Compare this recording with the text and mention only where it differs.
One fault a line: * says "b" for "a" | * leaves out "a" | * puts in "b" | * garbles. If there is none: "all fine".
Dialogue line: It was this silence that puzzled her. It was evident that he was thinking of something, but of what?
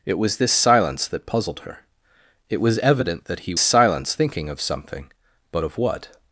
* says "silence" for "was"